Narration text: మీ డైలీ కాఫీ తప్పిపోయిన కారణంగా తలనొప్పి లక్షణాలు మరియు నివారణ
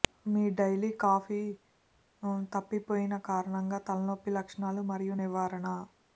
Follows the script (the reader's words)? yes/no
yes